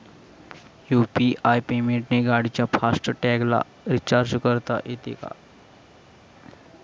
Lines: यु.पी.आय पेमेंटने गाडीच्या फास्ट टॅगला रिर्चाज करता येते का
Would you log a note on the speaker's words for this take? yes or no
no